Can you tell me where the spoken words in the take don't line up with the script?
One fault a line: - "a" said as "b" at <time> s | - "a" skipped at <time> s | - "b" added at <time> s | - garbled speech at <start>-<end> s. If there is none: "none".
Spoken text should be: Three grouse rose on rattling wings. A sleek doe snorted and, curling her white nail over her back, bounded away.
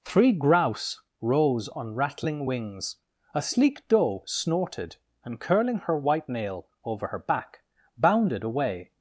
none